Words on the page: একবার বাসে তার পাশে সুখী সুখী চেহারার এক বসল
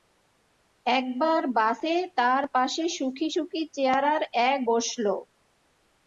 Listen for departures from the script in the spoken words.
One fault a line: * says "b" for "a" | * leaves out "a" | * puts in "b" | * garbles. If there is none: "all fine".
all fine